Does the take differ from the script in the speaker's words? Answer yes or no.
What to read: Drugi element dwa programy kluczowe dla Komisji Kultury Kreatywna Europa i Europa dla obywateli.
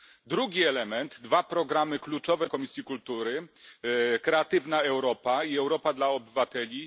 yes